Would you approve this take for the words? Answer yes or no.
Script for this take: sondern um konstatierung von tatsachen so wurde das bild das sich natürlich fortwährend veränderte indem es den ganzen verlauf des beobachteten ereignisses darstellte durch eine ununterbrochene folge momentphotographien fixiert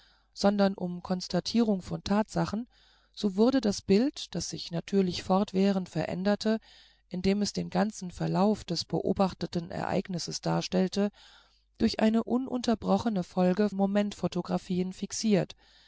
yes